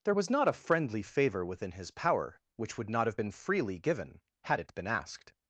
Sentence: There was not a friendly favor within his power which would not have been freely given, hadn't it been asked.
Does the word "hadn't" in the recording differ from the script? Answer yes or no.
yes